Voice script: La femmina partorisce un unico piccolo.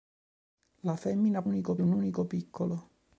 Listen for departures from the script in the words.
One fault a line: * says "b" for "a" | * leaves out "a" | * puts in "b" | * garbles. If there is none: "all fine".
* says "unico" for "partorisce"